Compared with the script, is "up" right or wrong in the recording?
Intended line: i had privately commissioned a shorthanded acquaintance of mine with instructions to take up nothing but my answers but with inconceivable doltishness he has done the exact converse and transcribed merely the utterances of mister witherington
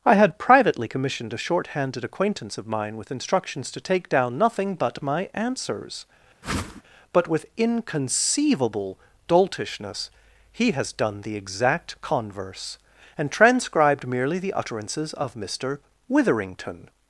wrong